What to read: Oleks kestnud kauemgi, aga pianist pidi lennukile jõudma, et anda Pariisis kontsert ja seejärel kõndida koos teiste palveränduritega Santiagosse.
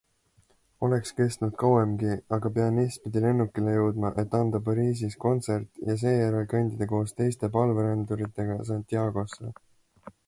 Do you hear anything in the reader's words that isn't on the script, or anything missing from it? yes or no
no